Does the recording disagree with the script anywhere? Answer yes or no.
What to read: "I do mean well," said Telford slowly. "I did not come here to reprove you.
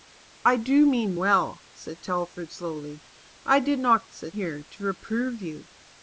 yes